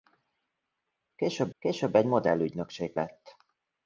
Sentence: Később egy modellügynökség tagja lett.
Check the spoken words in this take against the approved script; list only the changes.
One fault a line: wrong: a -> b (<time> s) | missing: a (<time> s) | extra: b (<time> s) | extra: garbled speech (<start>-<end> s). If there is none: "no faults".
extra: később (1.6 s)
missing: tagja (2.9 s)